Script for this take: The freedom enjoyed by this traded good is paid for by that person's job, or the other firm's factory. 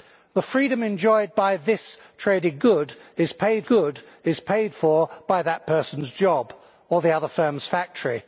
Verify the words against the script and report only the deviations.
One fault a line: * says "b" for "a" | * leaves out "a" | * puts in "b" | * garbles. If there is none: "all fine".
* puts in "good is paid"